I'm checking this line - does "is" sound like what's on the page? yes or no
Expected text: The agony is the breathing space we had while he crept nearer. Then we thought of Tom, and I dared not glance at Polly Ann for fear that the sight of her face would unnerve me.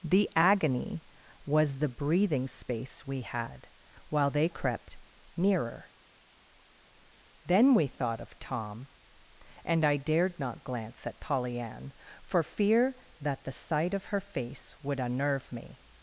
no